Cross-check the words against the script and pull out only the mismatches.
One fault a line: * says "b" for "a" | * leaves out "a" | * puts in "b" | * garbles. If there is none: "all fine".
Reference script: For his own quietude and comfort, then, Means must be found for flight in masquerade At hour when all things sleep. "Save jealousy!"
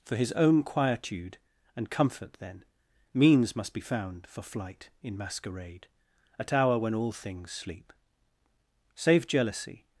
all fine